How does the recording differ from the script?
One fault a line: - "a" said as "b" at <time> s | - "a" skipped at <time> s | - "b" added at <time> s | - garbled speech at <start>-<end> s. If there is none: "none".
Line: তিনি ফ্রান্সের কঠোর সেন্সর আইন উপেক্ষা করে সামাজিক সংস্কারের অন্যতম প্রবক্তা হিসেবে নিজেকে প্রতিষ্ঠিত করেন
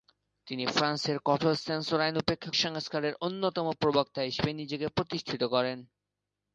- "করে সামাজিক" skipped at 2.5 s